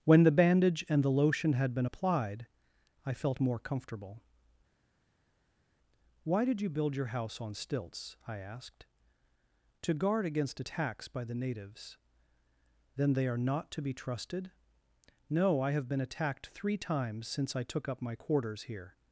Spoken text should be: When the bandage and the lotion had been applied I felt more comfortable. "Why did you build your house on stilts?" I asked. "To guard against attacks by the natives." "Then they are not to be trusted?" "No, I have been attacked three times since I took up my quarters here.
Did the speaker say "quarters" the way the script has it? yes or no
yes